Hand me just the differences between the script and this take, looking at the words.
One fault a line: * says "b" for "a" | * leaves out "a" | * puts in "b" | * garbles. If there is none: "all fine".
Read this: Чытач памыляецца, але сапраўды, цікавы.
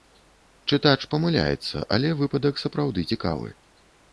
* puts in "выпадак"